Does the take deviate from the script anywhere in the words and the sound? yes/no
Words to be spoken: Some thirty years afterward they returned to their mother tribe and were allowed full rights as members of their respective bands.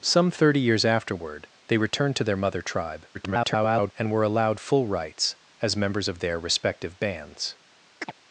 yes